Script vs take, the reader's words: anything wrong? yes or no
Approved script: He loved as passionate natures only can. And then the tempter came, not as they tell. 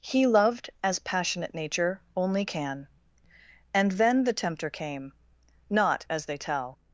yes